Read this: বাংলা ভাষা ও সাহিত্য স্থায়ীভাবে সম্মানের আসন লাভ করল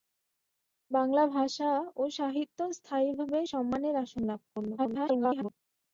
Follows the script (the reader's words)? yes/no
no